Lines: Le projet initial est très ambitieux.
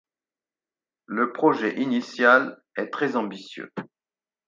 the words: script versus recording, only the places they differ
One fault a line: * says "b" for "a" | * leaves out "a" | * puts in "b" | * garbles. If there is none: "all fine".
all fine